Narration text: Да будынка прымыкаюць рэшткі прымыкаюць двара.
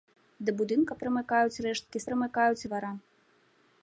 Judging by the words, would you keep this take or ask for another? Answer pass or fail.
pass